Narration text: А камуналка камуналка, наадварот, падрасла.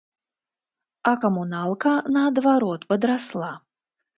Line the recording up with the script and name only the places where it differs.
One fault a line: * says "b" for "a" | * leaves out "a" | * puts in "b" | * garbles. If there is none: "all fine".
* leaves out "камуналка"